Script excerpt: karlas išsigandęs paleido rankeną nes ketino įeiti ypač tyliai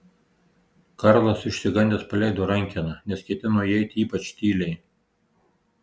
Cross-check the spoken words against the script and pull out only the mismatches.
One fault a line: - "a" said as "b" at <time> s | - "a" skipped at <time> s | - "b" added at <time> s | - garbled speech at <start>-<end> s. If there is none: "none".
none